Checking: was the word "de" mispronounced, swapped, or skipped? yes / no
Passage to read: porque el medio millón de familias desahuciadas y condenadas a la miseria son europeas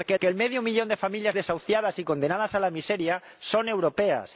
no